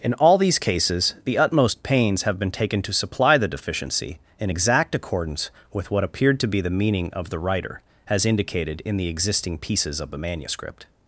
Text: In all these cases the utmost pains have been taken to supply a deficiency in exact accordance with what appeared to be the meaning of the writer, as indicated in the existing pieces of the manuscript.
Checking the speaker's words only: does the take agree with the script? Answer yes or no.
no